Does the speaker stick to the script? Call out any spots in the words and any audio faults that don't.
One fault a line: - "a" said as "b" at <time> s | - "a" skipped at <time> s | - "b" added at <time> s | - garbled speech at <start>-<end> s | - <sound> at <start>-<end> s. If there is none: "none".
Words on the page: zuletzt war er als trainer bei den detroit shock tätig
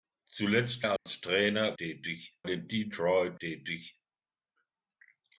- "war" skipped at 0.8 s
- dropout at 1.0-1.1 s
- "bei" said as "tätig" at 1.8 s
- "shock" skipped at 3.4 s